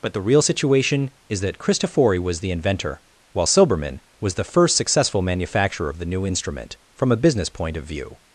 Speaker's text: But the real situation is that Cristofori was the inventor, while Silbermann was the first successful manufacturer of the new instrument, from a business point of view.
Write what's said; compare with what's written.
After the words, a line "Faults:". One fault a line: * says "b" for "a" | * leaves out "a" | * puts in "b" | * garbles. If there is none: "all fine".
But the real situation is that Cristofori was the inventor, while Silbermann was the first successful manufacturer of the new instrument, from a business point of view.
Faults:
all fine